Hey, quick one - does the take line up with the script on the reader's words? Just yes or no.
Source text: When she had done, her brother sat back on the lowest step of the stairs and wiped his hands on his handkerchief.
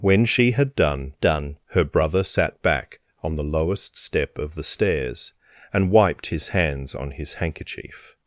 no